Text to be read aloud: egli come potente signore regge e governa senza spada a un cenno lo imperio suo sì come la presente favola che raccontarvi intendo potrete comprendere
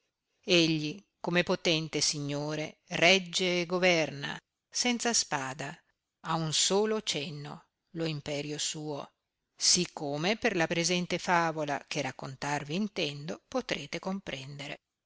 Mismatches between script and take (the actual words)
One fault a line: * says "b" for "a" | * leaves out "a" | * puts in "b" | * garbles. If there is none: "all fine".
* puts in "solo"
* puts in "per"